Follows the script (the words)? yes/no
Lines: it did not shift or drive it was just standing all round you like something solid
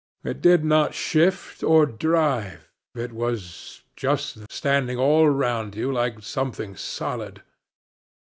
yes